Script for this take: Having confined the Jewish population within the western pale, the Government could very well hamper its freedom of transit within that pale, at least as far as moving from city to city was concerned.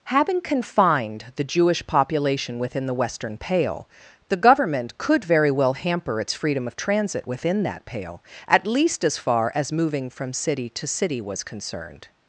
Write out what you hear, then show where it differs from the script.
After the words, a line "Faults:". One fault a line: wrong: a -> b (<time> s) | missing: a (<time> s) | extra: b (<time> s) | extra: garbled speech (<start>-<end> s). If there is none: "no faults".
Having confined the Jewish population within the western pale, the Government could very well hamper its freedom of transit within that pale, at least as far as moving from city to city was concerned.
Faults:
no faults